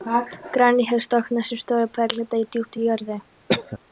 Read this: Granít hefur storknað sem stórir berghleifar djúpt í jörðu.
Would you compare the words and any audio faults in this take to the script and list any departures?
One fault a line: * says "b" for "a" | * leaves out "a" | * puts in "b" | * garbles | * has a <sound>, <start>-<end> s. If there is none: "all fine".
* has a cough, 3.5-3.8 s